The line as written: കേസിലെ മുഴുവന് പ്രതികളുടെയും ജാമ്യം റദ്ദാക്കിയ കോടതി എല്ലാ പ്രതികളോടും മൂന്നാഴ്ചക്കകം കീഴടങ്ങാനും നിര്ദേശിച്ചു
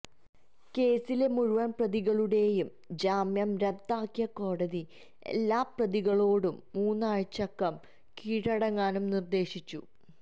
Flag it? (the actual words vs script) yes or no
no